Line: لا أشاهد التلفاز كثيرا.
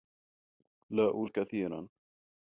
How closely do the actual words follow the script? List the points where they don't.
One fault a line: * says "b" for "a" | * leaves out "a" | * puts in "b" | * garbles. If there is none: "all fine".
* leaves out "أشاهد التلفاز"